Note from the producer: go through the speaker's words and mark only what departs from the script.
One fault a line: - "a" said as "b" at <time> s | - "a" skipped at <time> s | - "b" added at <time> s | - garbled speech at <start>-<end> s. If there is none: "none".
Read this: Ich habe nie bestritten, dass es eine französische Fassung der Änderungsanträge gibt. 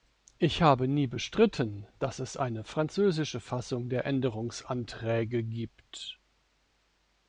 none